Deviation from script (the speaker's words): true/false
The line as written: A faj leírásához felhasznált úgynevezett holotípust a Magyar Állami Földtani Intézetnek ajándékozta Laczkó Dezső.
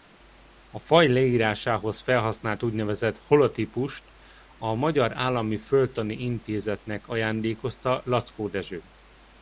false